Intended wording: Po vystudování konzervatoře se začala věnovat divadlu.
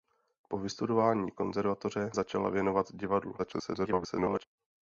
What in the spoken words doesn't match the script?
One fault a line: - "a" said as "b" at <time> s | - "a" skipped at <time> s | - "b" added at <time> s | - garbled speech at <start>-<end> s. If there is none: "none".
- "se" skipped at 2.1 s
- garbled speech at 3.4-4.4 s